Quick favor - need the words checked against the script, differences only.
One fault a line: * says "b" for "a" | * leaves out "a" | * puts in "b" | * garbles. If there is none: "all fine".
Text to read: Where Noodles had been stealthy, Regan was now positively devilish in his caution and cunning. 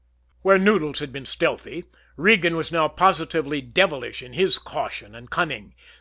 all fine